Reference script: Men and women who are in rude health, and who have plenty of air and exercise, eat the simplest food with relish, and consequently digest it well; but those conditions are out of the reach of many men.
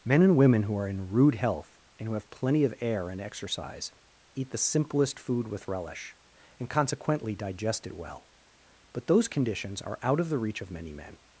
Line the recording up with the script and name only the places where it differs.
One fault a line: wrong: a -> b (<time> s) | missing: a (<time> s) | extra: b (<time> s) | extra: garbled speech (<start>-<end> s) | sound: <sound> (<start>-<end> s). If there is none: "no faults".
no faults